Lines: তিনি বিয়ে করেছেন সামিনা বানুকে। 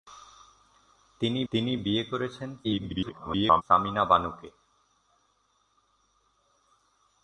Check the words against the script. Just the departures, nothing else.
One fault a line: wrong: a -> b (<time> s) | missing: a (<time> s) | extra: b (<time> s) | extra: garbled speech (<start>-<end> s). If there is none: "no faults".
extra: তিনি (1.5 s)
extra: garbled speech (2.6-3.6 s)